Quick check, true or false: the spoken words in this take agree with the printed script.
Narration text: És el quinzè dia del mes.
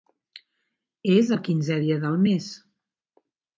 true